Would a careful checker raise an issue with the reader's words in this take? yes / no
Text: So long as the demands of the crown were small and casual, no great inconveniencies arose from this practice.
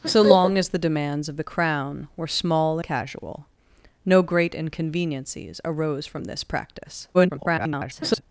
yes